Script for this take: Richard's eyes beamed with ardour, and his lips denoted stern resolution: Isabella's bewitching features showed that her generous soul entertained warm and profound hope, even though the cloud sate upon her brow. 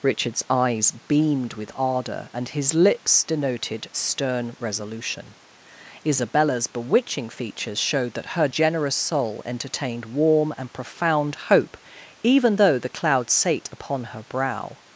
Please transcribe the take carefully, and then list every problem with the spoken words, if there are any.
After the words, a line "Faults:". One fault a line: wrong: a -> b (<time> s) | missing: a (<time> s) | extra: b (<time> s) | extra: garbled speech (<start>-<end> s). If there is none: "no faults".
Richard's eyes beamed with ardour, and his lips denoted stern resolution: Isabella's bewitching features showed that her generous soul entertained warm and profound hope, even though the cloud sate upon her brow.
Faults:
no faults